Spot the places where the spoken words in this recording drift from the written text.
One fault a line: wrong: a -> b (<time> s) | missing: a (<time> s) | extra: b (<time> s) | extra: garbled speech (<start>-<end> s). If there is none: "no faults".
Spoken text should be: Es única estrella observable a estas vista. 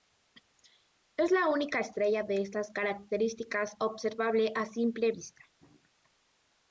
extra: la (1.3 s)
extra: de estas características (2.2 s)
wrong: estas -> simple (4.6 s)